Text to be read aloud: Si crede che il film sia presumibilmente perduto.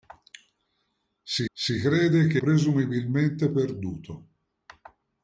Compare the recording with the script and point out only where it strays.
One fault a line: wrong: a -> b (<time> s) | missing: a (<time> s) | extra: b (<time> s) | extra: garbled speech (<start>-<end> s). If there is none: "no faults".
extra: si (1.5 s)
missing: il film sia (2.4 s)